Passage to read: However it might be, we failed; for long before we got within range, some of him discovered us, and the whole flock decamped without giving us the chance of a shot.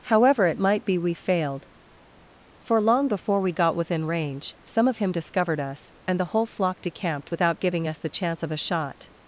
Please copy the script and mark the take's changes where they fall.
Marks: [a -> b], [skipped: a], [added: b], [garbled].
However it might be, we failed; for long before we got within range, some of him discovered us, and the whole flock decamped without giving us the chance of a shot.